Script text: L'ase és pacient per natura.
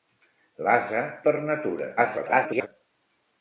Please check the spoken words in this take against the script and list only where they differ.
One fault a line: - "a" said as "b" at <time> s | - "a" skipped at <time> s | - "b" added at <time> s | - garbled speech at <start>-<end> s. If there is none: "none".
- "és pacient" skipped at 1.0 s
- garbled speech at 2.0-2.7 s